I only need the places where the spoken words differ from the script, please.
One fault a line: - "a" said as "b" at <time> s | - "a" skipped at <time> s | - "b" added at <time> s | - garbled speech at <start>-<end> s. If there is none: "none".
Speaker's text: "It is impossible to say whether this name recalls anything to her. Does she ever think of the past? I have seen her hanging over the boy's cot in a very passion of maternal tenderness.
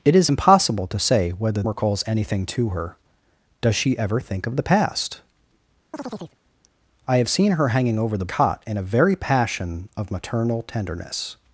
- "this name" skipped at 1.6 s
- "boy's" skipped at 8.3 s